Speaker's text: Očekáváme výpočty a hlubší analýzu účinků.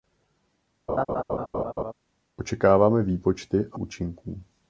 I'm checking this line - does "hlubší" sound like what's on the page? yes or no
no